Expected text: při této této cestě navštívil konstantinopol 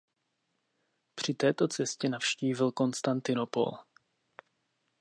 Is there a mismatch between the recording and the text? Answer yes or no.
yes